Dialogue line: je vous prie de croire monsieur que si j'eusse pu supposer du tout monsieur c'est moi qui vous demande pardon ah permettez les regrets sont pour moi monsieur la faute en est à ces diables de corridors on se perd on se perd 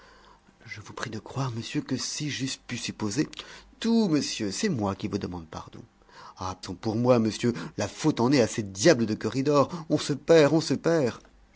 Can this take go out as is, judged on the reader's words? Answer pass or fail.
fail